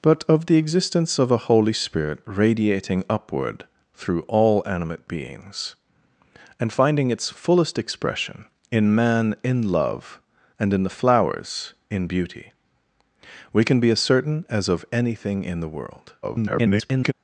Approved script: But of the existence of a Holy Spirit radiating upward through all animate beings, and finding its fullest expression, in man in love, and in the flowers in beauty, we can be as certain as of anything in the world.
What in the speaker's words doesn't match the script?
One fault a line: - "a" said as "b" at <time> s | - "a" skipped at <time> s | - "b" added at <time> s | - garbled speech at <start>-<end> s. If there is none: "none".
- garbled speech at 16.2-17.1 s